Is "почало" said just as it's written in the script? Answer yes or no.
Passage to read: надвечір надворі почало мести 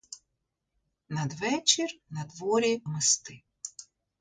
no